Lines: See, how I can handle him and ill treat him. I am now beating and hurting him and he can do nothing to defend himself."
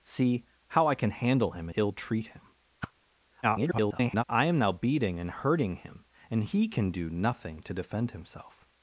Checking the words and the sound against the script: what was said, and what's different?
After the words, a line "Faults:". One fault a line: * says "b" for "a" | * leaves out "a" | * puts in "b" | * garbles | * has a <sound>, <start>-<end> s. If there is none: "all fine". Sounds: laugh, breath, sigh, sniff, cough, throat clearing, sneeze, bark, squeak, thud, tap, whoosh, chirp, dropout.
See, how I can handle him ill treat him. [garbled] I am now beating and hurting him and he can do nothing to defend himself."
Faults:
* leaves out "and"
* has a whoosh, 2.8-2.9 s
* garbles